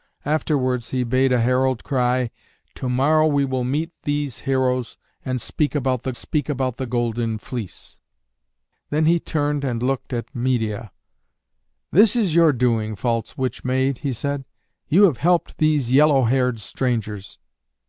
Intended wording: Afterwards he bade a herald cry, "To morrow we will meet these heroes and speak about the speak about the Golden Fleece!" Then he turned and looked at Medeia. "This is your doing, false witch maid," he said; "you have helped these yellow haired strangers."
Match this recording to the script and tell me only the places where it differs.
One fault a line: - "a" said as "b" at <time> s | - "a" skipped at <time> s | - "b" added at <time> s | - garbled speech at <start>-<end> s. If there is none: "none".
none